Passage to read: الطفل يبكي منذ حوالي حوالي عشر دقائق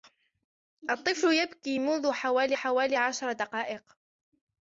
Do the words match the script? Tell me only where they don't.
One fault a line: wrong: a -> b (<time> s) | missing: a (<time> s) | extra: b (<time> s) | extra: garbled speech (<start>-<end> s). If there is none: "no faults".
no faults